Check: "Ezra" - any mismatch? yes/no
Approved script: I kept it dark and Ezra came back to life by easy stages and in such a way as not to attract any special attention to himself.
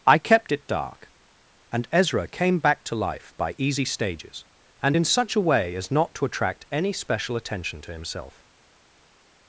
no